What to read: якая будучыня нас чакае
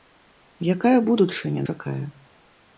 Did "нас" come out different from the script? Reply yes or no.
yes